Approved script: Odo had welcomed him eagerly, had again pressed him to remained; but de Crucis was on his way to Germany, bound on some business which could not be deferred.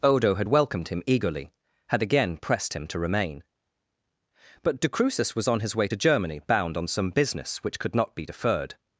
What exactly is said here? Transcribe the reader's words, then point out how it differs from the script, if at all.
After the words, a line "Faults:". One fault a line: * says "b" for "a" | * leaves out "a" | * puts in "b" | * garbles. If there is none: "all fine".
Odo had welcomed him eagerly, had again pressed him to remain; but de Crucis was on his way to Germany, bound on some business which could not be deferred.
Faults:
* says "remain" for "remained"